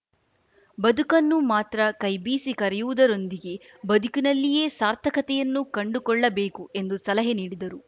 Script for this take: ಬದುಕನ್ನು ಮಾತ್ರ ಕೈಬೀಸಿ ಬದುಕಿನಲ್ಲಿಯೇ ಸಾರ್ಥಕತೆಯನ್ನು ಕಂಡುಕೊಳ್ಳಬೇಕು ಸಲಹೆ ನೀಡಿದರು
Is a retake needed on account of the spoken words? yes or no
yes